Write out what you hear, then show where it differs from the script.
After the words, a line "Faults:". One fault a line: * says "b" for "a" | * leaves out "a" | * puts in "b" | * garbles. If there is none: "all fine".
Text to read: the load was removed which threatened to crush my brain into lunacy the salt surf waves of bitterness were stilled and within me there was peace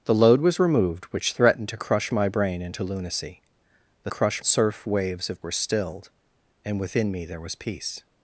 the load was removed which threatened to crush my brain into lunacy the crush surf waves of were stilled and within me there was peace
Faults:
* says "crush" for "salt"
* leaves out "bitterness"